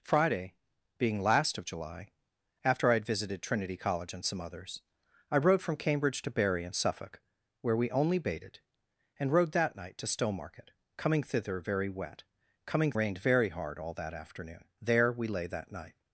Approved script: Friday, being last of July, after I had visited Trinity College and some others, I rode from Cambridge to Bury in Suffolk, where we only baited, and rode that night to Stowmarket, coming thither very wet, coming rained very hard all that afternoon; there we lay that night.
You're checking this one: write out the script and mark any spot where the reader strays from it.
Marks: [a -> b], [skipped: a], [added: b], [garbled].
Friday, being last of July, after I had visited Trinity College and some others, I rode from Cambridge to Bury in Suffolk, where we only baited, and rode that night to Stowmarket, coming thither very wet, coming rained very hard all that afternoon; there we lay that night.